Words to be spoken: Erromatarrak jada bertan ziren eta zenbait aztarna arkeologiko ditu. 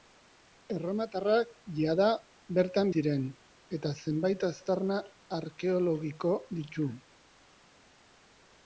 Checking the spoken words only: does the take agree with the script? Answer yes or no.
yes